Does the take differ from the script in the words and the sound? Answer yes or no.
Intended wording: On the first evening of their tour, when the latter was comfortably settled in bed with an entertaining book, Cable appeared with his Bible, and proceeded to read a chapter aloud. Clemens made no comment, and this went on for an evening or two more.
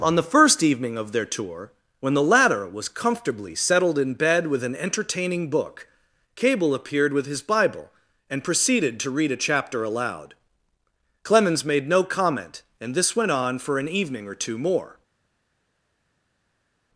no